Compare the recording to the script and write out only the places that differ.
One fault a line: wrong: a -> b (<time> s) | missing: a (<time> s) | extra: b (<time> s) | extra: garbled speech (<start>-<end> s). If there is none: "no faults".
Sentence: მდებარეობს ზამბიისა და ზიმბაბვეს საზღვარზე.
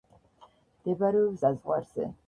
missing: ზამბიისა და ზიმბაბვეს (1.4 s)